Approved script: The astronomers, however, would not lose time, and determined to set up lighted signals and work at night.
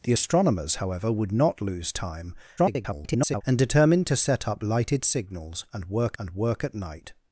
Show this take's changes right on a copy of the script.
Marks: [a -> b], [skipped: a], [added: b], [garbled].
The astronomers, however, would not lose time, [garbled] and determined to set up lighted signals and work [added: and work] at night.